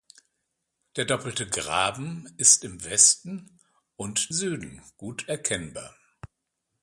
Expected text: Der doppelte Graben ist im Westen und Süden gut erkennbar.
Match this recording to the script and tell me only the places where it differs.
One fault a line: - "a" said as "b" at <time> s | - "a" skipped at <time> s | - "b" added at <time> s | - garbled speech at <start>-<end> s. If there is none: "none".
none